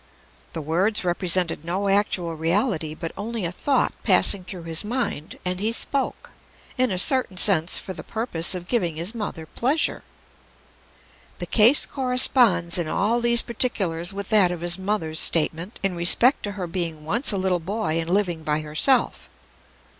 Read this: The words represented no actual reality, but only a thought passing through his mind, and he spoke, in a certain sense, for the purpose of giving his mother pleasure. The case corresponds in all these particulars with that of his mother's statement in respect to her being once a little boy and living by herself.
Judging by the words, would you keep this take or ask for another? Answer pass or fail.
pass